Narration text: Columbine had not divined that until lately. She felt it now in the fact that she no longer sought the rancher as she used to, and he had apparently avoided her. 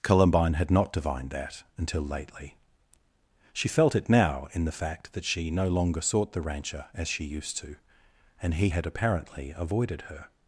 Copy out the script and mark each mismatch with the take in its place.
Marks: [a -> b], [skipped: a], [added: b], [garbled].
Columbine had not divined that until lately. She felt it now in the fact that she no longer sought the rancher as she used to, and he had apparently avoided her.